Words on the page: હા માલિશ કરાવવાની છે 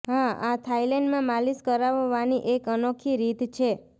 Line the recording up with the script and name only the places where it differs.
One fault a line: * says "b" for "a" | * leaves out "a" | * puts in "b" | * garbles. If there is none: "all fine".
* puts in "આ થાઇલેન્ડમાં"
* puts in "એક અનોખી રીત"